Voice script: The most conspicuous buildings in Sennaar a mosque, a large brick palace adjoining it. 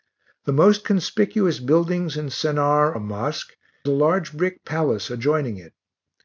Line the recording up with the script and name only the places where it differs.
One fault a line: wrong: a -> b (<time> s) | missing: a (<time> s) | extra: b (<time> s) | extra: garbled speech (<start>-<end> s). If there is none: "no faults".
no faults